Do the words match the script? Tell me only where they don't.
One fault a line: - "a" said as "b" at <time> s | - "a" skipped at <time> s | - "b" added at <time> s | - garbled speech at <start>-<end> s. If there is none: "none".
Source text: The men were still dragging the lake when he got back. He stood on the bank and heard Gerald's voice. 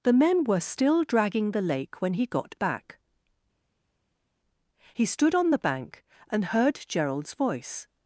none